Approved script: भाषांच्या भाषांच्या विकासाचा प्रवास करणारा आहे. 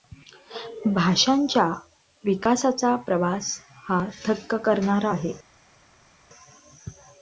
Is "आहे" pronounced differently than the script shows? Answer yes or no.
no